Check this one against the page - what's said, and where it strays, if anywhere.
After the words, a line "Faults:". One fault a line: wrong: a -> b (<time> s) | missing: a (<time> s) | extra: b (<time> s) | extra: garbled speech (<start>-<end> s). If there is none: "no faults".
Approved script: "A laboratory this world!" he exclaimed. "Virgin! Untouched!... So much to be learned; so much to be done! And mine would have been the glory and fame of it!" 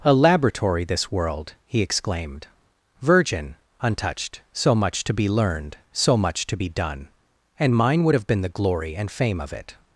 "A laboratory this world!" he exclaimed. "Virgin! Untouched!... So much to be learned; so much to be done! And mine would have been the glory and fame of it!"
Faults:
no faults